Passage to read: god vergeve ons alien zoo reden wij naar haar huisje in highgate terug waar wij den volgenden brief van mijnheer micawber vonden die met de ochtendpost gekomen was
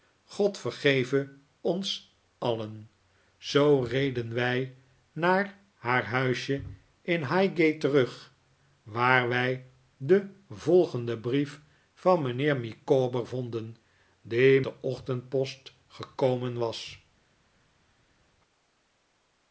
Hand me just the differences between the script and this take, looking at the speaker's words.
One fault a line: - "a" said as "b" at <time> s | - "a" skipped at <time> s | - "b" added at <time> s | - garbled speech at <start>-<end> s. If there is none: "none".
- "met" skipped at 14.6 s